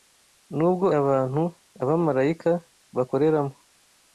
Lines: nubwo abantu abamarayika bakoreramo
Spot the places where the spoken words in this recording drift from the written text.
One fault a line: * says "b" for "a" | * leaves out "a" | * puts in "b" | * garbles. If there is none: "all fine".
all fine